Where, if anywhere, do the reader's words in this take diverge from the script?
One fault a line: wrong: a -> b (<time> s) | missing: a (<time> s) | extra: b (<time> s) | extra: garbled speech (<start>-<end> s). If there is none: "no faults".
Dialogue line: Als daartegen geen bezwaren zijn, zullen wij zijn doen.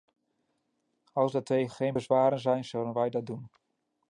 wrong: zijn -> dat (3.1 s)